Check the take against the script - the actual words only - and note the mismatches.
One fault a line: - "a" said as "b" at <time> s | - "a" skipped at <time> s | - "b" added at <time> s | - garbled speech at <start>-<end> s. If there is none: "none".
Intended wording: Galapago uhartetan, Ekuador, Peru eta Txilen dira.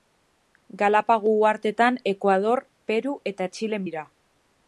none